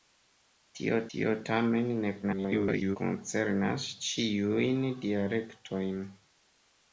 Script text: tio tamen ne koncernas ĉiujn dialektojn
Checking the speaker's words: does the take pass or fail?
fail